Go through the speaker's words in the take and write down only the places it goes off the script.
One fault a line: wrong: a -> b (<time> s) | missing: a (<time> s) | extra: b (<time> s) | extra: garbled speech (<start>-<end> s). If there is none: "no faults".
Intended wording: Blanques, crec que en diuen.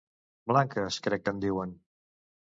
no faults